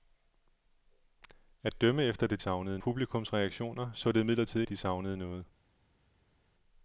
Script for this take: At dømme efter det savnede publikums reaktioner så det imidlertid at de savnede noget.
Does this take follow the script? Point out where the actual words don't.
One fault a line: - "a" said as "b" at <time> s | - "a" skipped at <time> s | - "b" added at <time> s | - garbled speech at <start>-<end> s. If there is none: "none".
none